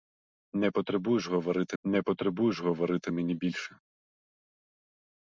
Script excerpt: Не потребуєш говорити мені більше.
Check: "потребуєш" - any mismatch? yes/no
no